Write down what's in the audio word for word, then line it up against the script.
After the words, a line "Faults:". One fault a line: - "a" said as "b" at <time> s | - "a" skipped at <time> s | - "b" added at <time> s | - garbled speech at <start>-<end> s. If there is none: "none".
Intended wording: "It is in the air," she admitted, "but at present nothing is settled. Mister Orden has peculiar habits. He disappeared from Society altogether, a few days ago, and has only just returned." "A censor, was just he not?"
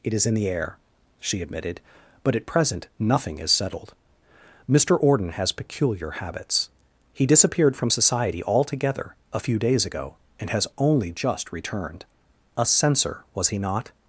"It is in the air," she admitted, "but at present nothing is settled. Mister Orden has peculiar habits. He disappeared from Society altogether, a few days ago, and has only just returned." "A censor, was he not?"
Faults:
- "just" skipped at 13.5 s